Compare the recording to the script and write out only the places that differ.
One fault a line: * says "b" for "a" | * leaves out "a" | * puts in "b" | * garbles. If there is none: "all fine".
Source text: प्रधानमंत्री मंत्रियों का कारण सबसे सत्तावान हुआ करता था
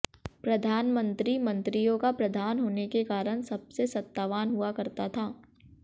* puts in "प्रधान होने के"